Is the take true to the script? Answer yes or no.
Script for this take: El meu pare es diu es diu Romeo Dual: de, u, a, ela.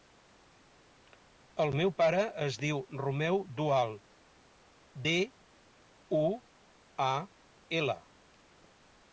no